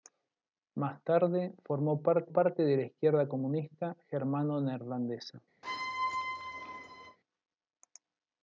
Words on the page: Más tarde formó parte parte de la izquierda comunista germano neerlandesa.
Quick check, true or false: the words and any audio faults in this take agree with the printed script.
false